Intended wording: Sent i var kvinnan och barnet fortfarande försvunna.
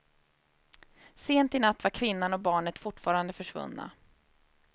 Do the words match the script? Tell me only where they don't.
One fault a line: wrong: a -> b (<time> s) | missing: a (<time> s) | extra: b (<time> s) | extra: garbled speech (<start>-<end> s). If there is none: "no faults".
extra: natt (1.6 s)